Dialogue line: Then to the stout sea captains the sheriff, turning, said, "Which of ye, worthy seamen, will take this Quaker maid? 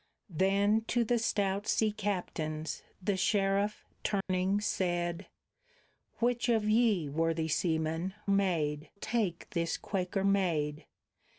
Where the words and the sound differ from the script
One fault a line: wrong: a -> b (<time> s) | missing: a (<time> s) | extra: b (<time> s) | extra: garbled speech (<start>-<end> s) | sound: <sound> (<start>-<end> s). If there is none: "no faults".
sound: dropout (4.2-4.3 s)
wrong: will -> maid (8.3 s)